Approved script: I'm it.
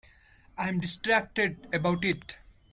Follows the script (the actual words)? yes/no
no